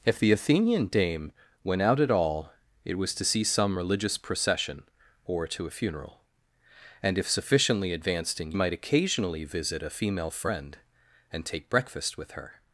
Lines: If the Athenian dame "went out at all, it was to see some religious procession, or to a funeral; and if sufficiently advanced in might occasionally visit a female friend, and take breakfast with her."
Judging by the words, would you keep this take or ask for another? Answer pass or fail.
pass